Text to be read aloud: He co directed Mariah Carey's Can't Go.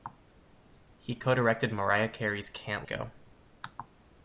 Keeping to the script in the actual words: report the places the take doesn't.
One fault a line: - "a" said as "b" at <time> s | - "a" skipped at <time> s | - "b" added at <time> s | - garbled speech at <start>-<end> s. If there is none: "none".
none